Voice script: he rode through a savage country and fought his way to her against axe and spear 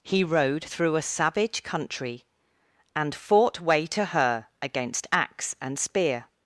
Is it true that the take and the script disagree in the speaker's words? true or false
true